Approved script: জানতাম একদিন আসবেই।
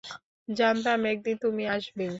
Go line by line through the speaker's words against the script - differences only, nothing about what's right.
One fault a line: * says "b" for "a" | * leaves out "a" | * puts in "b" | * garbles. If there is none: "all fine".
* puts in "তুমি"